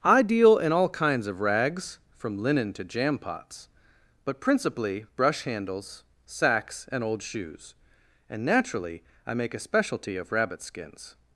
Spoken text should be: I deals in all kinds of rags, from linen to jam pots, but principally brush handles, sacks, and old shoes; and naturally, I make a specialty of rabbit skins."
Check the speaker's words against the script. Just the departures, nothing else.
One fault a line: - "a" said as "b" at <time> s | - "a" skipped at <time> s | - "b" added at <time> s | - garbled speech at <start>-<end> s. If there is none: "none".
- "deals" said as "deal" at 0.2 s